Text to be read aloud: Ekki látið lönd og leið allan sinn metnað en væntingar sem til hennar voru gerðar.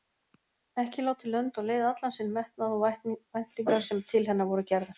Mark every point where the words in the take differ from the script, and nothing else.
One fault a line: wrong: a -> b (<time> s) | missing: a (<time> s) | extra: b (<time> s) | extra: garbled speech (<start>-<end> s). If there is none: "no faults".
wrong: en -> og (2.8 s)